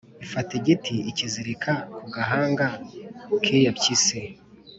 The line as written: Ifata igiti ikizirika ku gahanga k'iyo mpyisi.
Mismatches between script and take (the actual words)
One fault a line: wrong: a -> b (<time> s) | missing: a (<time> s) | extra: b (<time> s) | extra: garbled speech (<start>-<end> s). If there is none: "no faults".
no faults